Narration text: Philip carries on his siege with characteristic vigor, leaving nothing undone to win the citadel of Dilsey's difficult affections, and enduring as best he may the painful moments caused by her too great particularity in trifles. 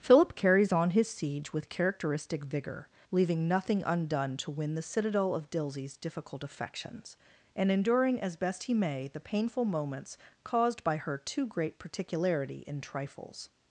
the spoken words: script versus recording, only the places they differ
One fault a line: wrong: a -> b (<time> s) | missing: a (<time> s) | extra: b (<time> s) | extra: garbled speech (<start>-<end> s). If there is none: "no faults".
no faults